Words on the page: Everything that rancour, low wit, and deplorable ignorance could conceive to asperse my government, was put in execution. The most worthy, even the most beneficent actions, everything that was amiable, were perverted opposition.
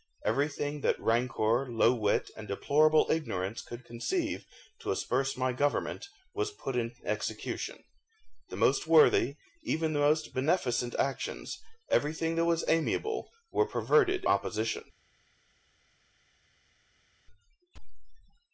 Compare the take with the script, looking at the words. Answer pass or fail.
pass